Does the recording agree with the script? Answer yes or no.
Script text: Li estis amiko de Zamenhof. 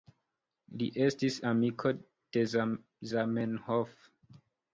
yes